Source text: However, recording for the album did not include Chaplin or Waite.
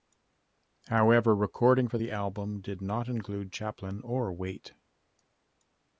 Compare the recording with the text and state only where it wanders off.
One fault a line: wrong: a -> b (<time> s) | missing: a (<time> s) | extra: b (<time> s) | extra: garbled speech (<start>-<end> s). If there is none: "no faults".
no faults